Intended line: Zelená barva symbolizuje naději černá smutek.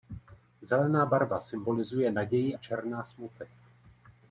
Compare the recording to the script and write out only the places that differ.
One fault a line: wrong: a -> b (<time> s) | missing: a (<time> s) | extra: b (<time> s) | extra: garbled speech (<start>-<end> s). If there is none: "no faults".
no faults